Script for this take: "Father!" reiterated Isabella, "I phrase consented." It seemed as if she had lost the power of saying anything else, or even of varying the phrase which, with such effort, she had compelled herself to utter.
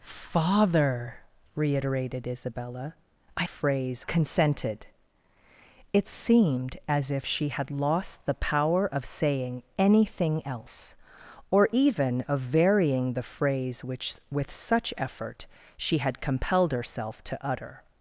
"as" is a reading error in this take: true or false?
false